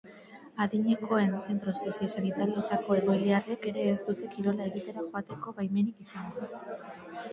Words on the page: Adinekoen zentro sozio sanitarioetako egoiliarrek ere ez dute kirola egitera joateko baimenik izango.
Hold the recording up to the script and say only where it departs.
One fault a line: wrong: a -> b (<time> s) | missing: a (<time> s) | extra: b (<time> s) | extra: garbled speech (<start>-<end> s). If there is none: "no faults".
no faults